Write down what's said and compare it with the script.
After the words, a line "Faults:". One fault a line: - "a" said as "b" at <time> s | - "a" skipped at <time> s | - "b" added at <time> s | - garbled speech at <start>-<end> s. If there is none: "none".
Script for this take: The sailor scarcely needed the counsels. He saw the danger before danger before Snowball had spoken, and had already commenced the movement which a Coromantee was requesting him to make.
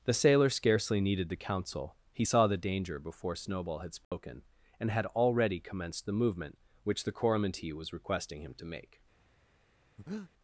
The sailor scarcely needed the counsel. He saw the danger before Snowball had spoken, and had already commenced the movement which the Coromantee was requesting him to make.
Faults:
- "counsels" said as "counsel" at 1.4 s
- "danger before" skipped at 3.3 s
- "a" said as "the" at 7.0 s